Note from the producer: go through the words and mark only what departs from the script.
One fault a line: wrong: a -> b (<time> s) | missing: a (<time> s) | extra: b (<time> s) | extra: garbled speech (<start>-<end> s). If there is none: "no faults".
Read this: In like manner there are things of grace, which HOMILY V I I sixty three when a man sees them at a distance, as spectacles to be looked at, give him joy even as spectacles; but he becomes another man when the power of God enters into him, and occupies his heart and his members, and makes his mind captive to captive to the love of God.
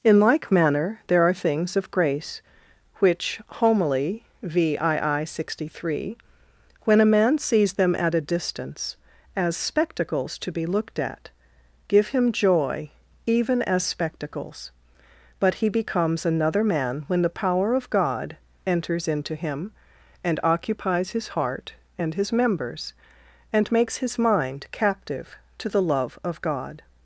missing: captive to (25.7 s)